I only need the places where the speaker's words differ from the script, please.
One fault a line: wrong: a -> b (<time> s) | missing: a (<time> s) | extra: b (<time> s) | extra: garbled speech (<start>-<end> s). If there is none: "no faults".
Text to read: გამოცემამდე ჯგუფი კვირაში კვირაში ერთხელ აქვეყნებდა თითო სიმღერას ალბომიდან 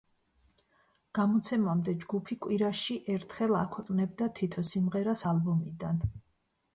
missing: კვირაში (3.0 s)